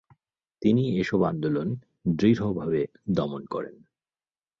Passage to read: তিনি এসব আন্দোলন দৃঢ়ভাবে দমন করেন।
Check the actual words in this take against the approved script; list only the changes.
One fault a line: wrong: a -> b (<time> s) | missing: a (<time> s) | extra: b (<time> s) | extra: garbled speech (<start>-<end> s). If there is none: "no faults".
no faults